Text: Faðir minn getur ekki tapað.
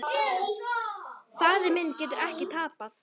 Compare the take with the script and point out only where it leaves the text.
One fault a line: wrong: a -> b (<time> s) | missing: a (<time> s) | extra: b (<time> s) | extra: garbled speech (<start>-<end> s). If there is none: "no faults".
no faults